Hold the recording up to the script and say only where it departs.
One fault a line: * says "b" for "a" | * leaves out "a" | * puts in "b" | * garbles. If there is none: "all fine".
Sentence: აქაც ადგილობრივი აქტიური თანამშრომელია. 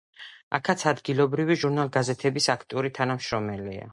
* puts in "ჟურნალ გაზეთების"